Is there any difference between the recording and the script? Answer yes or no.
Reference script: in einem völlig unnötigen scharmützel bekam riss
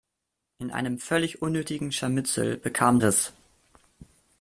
no